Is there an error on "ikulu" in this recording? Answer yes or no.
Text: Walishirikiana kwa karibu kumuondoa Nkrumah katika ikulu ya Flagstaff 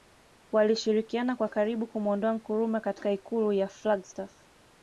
no